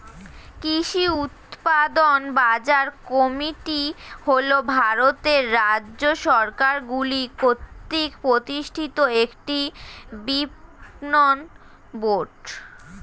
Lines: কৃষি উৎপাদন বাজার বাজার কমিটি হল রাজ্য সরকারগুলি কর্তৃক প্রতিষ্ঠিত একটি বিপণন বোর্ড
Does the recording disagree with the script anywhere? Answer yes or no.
yes